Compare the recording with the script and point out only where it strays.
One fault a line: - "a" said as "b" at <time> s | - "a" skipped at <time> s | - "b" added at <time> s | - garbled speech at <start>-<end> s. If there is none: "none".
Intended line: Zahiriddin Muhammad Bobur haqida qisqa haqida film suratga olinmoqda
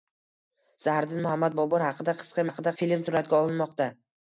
none